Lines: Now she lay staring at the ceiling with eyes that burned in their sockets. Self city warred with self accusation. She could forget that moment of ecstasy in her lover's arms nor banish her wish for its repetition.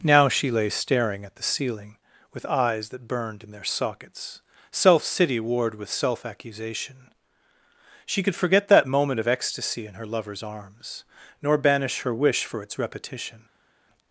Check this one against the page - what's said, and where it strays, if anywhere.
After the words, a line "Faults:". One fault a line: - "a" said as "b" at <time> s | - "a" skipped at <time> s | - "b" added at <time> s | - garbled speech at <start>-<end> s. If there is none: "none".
Now she lay staring at the ceiling with eyes that burned in their sockets. Self city warred with self accusation. She could forget that moment of ecstasy in her lover's arms nor banish her wish for its repetition.
Faults:
none